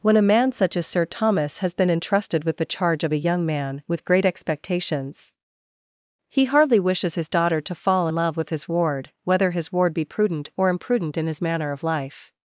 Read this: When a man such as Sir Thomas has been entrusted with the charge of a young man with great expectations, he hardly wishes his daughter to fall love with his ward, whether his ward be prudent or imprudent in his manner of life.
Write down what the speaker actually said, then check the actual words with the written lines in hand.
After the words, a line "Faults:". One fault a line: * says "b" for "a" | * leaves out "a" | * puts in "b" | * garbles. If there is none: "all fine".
When a man such as Sir Thomas has been entrusted with the charge of a young man with great expectations, he hardly wishes his daughter to fall love with his ward, whether his ward be prudent or imprudent in his manner of life.
Faults:
all fine